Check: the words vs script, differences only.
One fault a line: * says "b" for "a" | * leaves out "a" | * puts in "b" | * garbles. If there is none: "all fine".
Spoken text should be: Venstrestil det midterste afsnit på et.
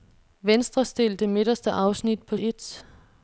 all fine